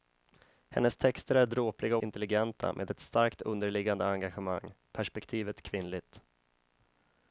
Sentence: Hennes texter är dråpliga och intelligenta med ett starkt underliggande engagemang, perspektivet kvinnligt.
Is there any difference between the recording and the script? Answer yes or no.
yes